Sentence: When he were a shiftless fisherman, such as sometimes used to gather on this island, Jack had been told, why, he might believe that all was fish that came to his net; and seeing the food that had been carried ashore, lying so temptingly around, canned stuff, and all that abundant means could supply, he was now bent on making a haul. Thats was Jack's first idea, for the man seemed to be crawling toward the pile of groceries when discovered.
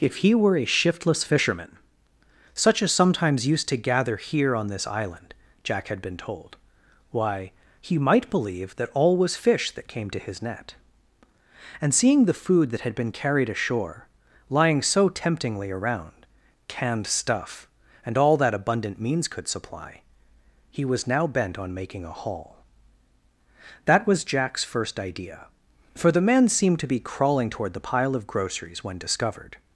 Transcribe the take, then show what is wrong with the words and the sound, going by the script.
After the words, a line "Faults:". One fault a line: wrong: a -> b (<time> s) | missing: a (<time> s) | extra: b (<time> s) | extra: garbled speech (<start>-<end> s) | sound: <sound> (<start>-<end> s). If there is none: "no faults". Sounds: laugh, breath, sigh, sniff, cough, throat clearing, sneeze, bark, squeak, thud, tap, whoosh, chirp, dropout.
If he were a shiftless fisherman, such as sometimes used to gather here on this island, Jack had been told, why, he might believe that all was fish that came to his net; and seeing the food that had been carried ashore, lying so temptingly around, canned stuff, and all that abundant means could supply, he was now bent on making a haul. That was Jack's first idea, for the man seemed to be crawling toward the pile of groceries when discovered.
Faults:
wrong: When -> If (0.0 s)
extra: here (4.2 s)
wrong: Thats -> That (23.9 s)